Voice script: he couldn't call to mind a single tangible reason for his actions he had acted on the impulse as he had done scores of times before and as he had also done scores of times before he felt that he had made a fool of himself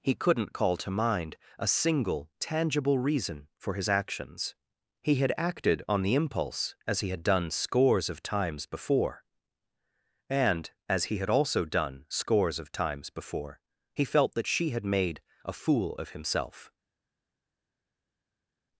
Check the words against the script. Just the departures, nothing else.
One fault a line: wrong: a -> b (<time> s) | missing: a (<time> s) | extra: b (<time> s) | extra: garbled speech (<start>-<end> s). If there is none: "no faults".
wrong: he -> she (14.5 s)